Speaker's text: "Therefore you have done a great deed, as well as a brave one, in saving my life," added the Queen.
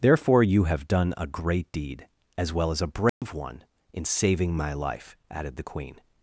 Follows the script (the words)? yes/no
yes